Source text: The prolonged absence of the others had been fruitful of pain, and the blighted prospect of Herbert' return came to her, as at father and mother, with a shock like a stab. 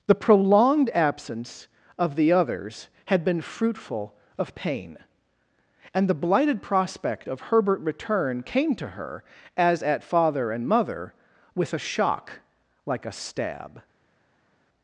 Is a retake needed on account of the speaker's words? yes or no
no